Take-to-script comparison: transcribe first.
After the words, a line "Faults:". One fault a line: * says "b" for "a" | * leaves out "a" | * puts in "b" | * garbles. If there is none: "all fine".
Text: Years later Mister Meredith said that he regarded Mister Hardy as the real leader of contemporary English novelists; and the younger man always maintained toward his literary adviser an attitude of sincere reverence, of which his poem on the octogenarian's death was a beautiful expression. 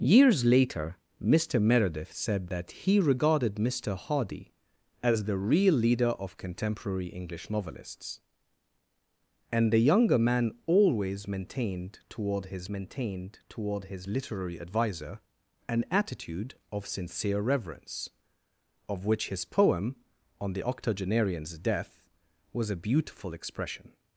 Years later Mister Meredith said that he regarded Mister Hardy as the real leader of contemporary English novelists; and the younger man always maintained toward his maintained toward his literary adviser an attitude of sincere reverence, of which his poem on the octogenarian's death was a beautiful expression.
Faults:
* puts in "maintained toward his"